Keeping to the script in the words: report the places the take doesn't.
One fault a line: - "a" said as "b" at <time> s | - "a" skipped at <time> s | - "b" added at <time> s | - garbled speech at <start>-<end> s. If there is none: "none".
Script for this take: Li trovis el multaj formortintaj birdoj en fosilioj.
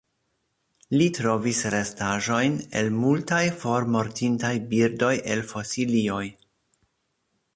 - "restaĵojn" added at 1.8 s
- "en" said as "el" at 5.4 s